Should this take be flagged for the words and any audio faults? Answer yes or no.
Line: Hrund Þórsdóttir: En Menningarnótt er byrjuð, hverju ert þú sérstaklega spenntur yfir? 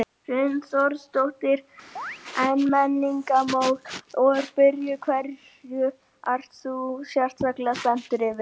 yes